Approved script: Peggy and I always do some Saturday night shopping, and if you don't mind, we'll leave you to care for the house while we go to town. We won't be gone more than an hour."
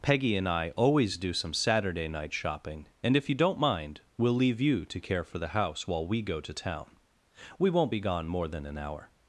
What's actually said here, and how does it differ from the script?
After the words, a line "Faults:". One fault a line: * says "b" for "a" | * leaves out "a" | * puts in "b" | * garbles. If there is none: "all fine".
Peggy and I always do some Saturday night shopping, and if you don't mind, we'll leave you to care for the house while we go to town. We won't be gone more than an hour."
Faults:
all fine